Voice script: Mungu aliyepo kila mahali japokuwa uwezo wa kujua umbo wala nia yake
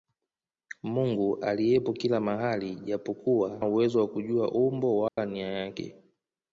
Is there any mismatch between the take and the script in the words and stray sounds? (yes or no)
yes